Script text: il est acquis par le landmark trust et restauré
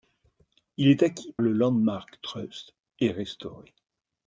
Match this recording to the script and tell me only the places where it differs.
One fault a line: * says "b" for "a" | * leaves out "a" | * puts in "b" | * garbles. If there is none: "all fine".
* leaves out "par"